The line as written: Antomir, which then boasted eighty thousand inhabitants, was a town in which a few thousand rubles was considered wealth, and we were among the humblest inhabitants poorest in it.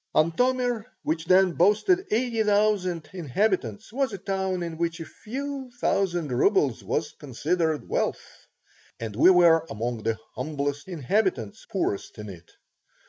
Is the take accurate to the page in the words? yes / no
yes